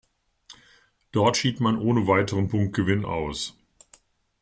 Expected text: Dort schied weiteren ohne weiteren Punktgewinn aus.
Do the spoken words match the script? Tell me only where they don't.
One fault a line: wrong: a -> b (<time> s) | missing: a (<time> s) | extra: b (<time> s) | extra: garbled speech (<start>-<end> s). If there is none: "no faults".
wrong: weiteren -> man (1.6 s)